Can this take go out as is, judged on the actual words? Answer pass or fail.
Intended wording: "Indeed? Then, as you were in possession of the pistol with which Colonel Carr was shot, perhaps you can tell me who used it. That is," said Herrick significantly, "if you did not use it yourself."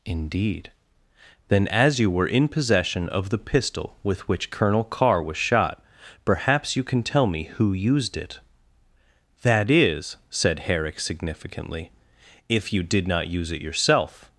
pass